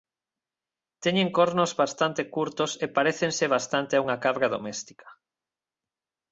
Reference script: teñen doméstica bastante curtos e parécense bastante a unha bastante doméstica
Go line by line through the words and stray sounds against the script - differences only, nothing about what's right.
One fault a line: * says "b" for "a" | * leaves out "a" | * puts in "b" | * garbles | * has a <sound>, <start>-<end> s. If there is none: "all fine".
* says "cornos" for "doméstica"
* says "cabra" for "bastante"